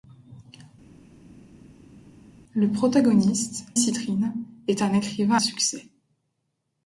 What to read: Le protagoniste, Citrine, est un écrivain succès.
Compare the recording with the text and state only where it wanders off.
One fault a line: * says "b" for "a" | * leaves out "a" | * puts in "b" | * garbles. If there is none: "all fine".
all fine